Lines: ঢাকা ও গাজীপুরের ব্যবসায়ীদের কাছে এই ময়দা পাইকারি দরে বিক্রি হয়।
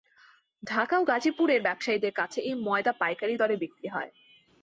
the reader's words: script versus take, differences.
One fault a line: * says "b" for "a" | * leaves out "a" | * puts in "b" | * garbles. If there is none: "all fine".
all fine